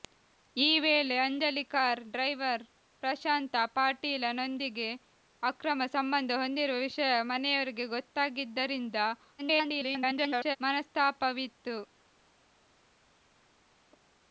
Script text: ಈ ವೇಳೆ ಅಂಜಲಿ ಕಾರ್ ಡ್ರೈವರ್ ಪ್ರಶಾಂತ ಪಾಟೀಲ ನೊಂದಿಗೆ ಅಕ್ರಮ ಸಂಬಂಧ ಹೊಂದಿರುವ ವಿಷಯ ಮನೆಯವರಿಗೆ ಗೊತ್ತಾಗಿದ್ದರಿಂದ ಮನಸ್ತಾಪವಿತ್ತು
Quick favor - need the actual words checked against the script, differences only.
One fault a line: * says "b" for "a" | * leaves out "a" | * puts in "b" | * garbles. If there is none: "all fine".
* garbles